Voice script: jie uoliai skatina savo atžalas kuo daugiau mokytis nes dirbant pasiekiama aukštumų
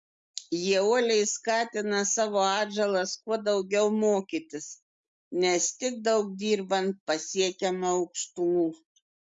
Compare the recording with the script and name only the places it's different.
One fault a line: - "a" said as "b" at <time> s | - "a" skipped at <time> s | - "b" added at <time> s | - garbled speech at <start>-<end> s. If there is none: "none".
- "tik daug" added at 5.8 s